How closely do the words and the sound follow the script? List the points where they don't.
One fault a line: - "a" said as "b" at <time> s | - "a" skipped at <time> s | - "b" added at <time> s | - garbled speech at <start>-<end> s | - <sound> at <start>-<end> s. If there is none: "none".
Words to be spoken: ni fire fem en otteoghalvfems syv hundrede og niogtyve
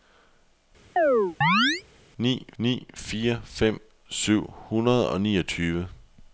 - chirp at 1.0-1.8 s
- "ni" added at 2.6 s
- "en otteoghalvfems" skipped at 3.8 s